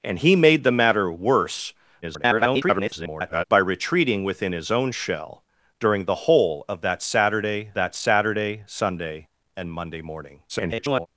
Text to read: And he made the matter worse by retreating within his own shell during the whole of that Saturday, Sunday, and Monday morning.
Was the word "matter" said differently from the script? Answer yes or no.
no